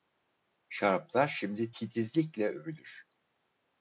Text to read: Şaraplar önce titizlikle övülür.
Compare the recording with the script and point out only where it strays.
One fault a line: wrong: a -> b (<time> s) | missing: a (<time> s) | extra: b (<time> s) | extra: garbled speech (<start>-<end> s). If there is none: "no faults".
wrong: önce -> şimdi (1.3 s)